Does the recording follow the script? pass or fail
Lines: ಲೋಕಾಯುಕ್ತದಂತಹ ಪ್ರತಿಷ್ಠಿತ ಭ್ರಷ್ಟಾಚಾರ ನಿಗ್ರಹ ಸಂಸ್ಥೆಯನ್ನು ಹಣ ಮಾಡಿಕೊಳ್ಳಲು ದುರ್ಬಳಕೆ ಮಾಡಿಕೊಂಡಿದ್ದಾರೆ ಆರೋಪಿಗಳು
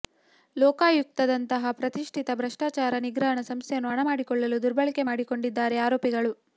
pass